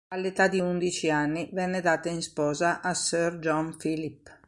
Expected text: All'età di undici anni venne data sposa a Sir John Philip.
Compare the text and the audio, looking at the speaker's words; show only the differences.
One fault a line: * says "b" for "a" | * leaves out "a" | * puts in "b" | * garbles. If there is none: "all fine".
* puts in "in"